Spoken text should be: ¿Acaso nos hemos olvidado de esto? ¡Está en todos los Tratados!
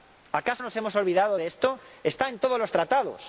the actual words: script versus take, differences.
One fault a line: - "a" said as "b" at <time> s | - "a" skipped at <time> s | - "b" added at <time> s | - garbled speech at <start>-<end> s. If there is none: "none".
none